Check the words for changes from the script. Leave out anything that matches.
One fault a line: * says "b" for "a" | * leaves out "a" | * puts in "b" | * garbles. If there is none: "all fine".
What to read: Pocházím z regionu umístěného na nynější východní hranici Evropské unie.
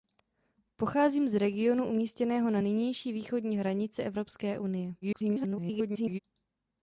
* garbles